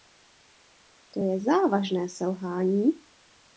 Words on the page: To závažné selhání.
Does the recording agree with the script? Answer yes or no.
no